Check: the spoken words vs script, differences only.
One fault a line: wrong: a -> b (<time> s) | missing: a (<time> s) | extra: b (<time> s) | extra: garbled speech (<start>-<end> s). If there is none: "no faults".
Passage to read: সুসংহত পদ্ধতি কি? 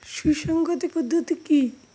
no faults